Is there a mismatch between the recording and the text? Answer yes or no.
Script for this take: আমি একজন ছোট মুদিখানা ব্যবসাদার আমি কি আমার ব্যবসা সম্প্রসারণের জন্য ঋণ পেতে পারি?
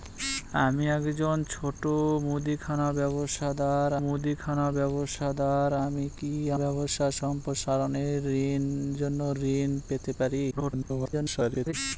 yes